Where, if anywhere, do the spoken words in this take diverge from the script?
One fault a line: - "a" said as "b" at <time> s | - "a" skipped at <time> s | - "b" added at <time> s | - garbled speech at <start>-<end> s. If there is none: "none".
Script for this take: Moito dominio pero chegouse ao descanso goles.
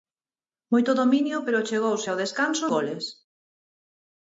none